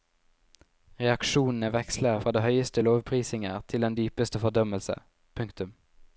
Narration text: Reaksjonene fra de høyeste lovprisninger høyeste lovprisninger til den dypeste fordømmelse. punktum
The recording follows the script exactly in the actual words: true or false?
false